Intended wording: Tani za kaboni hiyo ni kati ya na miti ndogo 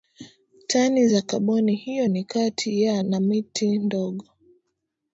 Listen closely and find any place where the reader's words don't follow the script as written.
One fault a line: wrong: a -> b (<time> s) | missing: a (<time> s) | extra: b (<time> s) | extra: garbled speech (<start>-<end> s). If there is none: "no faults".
no faults